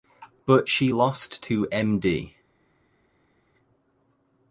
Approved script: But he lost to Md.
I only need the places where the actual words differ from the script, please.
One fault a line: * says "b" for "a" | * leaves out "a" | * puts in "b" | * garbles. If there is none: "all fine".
* says "she" for "he"